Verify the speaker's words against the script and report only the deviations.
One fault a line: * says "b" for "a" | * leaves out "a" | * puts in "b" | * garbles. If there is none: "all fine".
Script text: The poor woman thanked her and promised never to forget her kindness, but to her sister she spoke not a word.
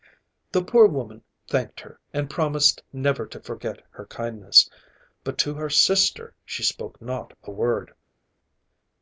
all fine